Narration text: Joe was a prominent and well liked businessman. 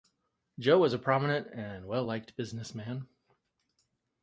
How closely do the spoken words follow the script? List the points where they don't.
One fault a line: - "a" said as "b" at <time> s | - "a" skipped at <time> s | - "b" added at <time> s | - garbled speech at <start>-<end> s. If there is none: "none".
none